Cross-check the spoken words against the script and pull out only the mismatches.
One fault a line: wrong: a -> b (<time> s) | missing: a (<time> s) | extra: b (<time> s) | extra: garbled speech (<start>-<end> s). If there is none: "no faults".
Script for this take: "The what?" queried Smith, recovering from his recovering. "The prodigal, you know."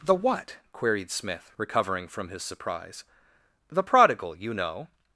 wrong: recovering -> surprise (2.4 s)